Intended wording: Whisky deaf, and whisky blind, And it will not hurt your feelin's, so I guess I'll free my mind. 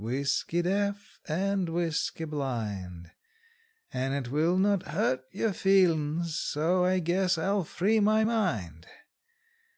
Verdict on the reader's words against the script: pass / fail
pass